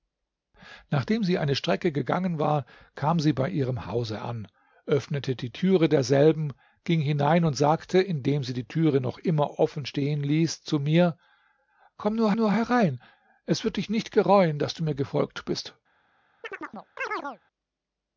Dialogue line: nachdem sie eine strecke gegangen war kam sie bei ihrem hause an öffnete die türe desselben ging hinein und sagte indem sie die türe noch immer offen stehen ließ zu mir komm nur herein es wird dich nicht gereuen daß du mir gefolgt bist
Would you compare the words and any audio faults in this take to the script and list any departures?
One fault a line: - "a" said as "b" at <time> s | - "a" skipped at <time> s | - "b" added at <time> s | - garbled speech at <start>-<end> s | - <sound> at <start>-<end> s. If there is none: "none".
- "nur" added at 12.3 s
- chirp at 16.4-17.4 s